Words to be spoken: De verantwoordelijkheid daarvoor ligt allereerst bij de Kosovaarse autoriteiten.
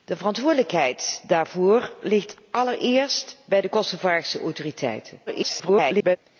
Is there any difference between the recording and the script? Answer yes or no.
yes